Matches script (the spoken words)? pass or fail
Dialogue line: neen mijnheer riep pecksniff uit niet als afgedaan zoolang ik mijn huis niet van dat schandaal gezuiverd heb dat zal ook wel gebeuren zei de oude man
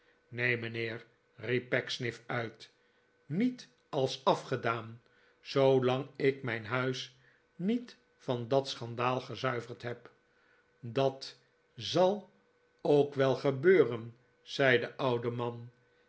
pass